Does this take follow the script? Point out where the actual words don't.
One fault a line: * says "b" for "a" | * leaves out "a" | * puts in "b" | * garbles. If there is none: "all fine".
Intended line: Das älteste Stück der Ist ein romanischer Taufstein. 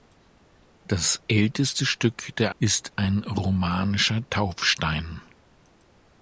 all fine